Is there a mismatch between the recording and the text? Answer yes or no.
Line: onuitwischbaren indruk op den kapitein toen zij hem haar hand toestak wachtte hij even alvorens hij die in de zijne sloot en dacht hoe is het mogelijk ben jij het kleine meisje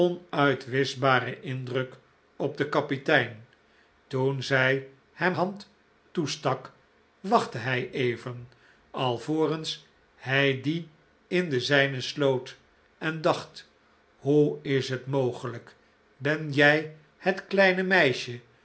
yes